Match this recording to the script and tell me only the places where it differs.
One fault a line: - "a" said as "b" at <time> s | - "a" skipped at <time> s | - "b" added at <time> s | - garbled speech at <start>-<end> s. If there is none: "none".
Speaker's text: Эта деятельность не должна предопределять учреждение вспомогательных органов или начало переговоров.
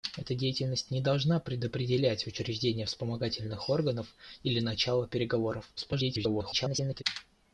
- garbled speech at 5.8-7.0 s